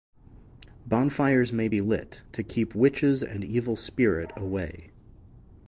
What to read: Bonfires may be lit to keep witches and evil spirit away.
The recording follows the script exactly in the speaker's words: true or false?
true